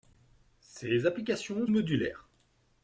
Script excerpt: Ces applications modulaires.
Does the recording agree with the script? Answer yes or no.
yes